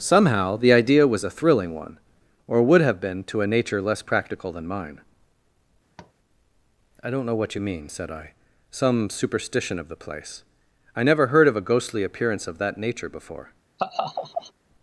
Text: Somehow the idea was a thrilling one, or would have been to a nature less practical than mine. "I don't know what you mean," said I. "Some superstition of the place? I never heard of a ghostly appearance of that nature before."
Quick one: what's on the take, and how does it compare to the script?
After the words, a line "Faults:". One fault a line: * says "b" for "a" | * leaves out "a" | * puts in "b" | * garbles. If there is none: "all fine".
Somehow the idea was a thrilling one, or would have been to a nature less practical than mine. "I don't know what you mean," said I. "Some superstition of the place? I never heard of a ghostly appearance of that nature before."
Faults:
all fine